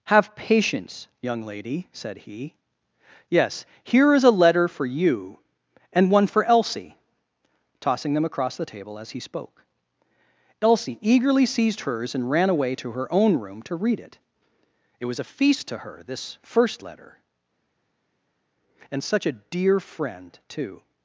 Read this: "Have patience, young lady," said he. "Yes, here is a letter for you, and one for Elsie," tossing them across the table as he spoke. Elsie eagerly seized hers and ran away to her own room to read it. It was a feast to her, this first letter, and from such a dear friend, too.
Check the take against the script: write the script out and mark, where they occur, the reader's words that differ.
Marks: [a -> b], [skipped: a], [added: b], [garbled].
"Have patience, young lady," said he. "Yes, here is a letter for you, and one for Elsie," tossing them across the table as he spoke. Elsie eagerly seized hers and ran away to her own room to read it. It was a feast to her, this first letter, and [skipped: from] such a dear friend, too.